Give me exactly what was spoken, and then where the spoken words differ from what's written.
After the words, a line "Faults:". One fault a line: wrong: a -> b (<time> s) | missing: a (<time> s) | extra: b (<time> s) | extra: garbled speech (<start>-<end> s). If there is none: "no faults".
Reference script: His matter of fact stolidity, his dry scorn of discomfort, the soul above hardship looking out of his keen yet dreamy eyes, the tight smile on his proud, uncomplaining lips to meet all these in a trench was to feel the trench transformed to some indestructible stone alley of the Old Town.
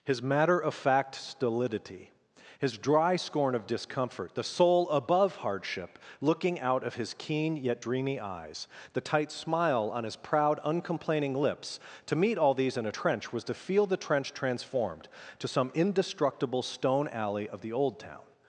His matter of fact stolidity, his dry scorn of discomfort, the soul above hardship looking out of his keen yet dreamy eyes, the tight smile on his proud, uncomplaining lips to meet all these in a trench was to feel the trench transformed to some indestructible stone alley of the Old Town.
Faults:
no faults